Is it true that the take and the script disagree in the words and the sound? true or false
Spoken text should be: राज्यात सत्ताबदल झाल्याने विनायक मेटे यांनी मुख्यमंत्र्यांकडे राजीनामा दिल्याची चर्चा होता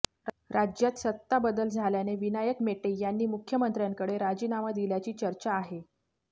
true